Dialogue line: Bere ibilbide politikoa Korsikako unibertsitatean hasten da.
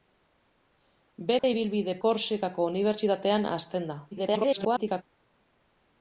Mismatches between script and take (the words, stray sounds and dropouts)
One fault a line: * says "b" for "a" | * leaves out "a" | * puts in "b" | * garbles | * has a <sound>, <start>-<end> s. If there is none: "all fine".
* has a dropout, 1.4-1.4 s
* leaves out "politikoa"
* garbles